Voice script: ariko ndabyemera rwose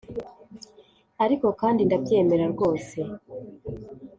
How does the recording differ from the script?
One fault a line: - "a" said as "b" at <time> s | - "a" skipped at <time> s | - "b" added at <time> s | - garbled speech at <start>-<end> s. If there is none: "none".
- "kandi" added at 1.6 s